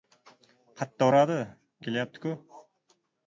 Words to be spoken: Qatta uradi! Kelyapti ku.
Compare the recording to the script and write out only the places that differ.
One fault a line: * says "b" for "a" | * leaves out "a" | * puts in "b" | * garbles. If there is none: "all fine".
all fine